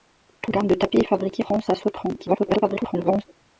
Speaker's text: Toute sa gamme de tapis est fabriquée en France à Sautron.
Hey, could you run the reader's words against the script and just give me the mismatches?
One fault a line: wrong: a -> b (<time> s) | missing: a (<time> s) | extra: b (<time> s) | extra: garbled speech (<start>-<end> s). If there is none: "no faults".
missing: sa (0.6 s)
missing: en (1.4 s)
extra: garbled speech (2.2-3.2 s)